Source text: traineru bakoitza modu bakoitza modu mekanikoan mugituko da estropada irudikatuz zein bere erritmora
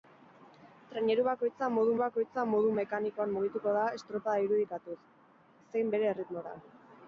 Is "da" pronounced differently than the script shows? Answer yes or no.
no